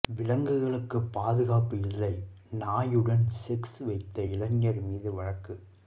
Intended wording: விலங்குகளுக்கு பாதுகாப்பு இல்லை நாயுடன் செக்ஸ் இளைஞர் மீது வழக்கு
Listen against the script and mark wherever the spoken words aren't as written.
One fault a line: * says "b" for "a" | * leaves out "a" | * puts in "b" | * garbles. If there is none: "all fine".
* puts in "வைத்த"